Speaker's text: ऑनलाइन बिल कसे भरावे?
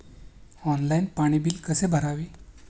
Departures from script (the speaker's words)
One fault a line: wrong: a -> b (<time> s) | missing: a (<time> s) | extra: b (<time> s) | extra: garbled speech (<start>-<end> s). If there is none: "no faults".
extra: पाणी (1.2 s)